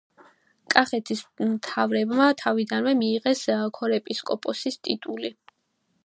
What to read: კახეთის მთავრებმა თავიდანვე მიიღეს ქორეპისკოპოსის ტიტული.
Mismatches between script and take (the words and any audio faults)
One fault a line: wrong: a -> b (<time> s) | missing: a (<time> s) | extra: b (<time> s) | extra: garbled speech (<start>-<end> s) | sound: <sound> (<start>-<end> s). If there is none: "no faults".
no faults